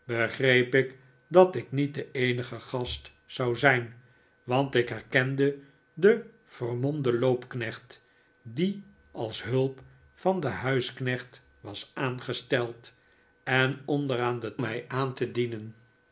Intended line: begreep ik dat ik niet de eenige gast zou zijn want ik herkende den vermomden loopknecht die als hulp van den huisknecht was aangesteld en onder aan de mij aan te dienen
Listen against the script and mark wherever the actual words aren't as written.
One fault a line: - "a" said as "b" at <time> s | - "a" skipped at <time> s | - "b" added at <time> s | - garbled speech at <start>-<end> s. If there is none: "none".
none